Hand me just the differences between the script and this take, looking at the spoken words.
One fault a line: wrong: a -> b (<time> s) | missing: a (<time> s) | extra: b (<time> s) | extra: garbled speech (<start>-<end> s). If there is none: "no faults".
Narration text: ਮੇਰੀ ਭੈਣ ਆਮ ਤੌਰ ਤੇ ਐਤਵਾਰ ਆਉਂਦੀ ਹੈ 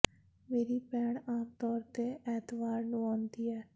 extra: ਨੂੰ (2.8 s)